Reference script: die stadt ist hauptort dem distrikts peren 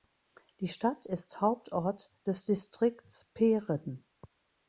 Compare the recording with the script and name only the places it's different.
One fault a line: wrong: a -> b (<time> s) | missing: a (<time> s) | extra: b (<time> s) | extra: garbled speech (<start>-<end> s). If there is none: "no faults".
wrong: dem -> des (2.2 s)